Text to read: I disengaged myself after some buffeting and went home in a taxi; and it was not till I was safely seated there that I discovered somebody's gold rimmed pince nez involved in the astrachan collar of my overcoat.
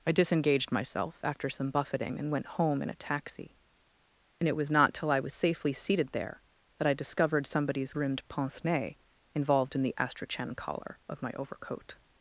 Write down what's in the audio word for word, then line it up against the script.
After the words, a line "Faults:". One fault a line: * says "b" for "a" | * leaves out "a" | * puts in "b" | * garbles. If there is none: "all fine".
I disengaged myself after some buffeting and went home in a taxi; and it was not till I was safely seated there that I discovered somebody's rimmed pince nez involved in the astrachan collar of my overcoat.
Faults:
* leaves out "gold"